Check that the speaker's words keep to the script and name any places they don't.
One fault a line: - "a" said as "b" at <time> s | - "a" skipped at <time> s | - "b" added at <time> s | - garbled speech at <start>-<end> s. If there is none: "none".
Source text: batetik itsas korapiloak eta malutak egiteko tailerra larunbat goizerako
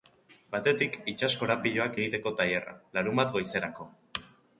- "eta malutak" skipped at 2.0 s